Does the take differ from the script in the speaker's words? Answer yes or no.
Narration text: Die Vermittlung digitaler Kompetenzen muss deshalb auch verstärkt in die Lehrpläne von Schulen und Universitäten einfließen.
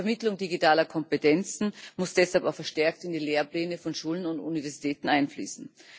no